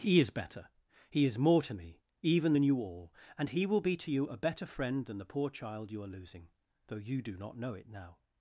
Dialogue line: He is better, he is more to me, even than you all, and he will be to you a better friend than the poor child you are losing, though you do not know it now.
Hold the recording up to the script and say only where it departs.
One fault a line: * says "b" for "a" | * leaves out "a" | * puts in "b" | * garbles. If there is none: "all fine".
all fine